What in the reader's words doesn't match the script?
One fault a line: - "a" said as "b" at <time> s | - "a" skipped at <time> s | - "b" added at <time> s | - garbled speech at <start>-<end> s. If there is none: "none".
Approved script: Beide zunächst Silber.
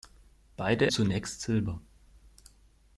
none